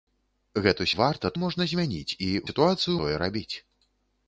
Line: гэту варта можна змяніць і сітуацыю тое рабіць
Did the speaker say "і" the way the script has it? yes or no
yes